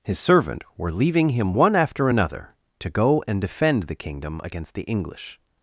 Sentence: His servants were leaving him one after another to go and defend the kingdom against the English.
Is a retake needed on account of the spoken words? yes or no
yes